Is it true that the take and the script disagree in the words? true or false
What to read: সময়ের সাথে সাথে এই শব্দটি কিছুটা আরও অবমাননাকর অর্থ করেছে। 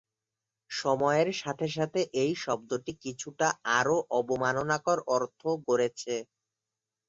false